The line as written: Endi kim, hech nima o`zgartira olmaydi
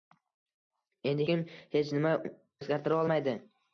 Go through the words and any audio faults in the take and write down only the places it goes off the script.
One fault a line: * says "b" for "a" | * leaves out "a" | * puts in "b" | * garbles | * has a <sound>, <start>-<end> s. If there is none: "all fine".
all fine